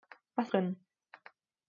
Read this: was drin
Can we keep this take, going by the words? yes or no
yes